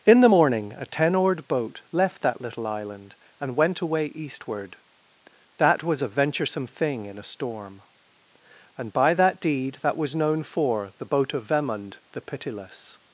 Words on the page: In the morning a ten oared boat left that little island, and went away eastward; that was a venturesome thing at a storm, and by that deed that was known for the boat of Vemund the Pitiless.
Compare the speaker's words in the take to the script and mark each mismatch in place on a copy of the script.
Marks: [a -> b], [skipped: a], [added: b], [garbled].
In the morning a ten oared boat left that little island, and went away eastward; that was a venturesome thing [at -> in] a storm, and by that deed that was known for the boat of Vemund the Pitiless.